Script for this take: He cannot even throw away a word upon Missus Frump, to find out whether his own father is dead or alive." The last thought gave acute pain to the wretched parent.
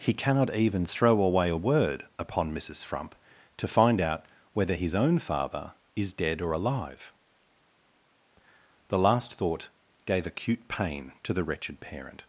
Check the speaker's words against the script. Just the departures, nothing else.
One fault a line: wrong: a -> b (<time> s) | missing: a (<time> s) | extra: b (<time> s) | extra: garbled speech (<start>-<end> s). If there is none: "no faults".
no faults